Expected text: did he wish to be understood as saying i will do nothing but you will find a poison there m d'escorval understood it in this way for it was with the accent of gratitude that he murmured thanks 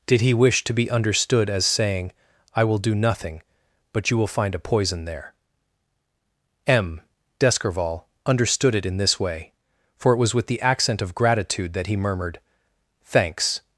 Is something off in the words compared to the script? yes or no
no